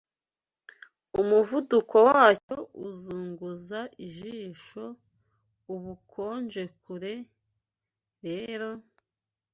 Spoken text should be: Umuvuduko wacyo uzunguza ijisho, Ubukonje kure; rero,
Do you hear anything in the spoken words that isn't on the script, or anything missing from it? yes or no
no